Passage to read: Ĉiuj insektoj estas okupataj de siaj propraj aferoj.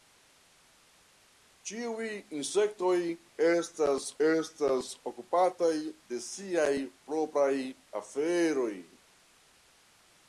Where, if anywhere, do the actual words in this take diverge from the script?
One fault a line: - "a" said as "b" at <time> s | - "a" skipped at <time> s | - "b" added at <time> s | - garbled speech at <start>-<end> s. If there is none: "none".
- "estas" added at 4.3 s